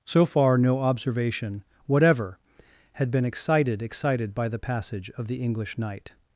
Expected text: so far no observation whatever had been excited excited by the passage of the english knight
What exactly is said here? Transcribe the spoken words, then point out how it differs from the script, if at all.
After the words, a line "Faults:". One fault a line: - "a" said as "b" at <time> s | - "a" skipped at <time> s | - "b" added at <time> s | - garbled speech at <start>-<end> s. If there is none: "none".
so far no observation whatever had been excited excited by the passage of the english knight
Faults:
none